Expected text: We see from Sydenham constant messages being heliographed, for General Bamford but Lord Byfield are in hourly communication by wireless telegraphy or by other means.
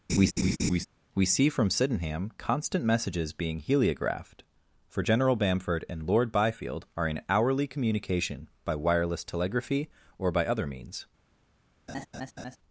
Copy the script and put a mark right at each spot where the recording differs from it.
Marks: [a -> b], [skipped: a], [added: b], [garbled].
We see from Sydenham constant messages being heliographed, for General Bamford [but -> and] Lord Byfield are in hourly communication by wireless telegraphy or by other means.